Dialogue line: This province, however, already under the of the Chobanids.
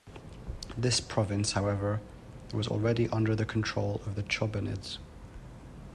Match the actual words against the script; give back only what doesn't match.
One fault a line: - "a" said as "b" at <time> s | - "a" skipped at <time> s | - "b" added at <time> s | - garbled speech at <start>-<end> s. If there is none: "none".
- "was" added at 2.5 s
- "control" added at 3.4 s